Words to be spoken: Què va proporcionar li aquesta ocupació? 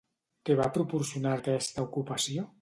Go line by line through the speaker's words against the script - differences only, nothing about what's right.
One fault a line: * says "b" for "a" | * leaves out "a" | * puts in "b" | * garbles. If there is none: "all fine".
* leaves out "li"